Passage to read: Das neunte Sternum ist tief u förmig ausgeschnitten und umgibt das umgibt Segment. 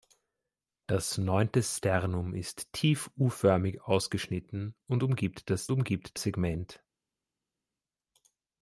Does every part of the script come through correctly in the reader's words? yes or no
yes